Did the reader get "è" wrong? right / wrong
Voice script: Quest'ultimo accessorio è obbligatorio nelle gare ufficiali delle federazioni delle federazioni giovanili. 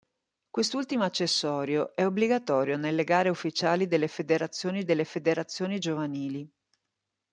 right